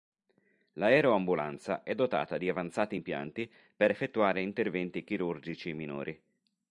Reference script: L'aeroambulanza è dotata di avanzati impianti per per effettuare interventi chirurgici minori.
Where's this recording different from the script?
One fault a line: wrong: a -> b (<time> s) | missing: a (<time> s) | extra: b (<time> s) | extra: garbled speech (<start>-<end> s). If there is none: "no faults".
missing: per (3.9 s)